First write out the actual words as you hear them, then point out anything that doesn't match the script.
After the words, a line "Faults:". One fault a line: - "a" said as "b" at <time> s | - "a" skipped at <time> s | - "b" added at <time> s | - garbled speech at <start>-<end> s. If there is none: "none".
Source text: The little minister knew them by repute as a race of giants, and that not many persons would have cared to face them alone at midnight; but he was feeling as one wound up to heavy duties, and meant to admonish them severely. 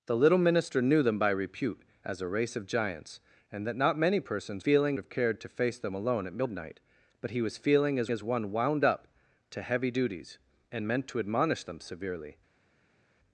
The little minister knew them by repute as a race of giants, and that not many persons feeling have cared to face them alone at midnight; but he was feeling as as one wound up to heavy duties, and meant to admonish them severely.
Faults:
- "would" said as "feeling" at 4.6 s
- "as" added at 8.1 s